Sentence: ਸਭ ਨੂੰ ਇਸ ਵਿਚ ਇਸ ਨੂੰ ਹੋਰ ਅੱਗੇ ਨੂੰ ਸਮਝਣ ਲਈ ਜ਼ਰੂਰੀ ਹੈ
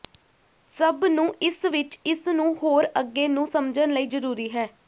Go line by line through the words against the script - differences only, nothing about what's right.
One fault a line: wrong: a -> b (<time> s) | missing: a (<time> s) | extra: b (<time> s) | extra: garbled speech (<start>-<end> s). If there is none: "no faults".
no faults